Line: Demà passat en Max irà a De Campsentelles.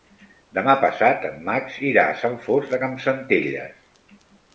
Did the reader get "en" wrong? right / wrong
right